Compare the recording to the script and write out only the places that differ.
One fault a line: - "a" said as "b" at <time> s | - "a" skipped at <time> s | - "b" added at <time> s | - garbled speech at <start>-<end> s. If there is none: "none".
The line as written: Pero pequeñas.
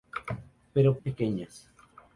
none